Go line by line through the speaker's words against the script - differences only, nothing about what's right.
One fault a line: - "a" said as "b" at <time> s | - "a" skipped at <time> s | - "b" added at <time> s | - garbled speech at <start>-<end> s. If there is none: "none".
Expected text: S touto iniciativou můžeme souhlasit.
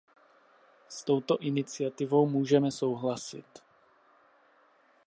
none